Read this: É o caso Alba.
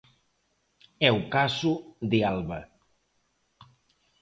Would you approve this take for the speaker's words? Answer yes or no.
no